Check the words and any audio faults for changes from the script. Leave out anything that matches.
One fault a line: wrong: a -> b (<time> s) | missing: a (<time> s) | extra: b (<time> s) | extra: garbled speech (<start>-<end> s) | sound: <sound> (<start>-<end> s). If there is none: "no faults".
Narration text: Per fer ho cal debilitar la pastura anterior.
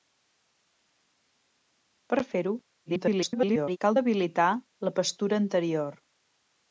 extra: garbled speech (2.9-3.8 s)